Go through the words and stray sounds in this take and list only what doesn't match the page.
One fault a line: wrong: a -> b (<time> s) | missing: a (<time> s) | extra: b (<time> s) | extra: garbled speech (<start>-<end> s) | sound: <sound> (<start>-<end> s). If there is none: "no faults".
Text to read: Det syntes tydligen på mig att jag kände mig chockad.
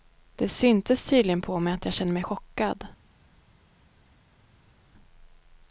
no faults